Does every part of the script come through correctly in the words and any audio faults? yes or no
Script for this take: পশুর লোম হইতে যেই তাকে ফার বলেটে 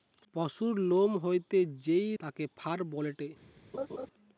no